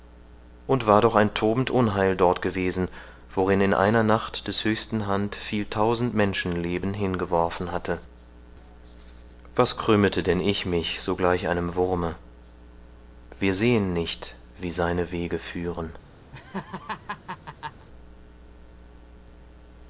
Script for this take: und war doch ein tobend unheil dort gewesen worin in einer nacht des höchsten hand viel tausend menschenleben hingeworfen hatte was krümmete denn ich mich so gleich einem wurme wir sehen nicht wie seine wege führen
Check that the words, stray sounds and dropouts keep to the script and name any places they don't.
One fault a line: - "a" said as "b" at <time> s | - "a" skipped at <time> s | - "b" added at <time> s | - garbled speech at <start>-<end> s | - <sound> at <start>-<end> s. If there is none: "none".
- laugh at 16.3-17.9 s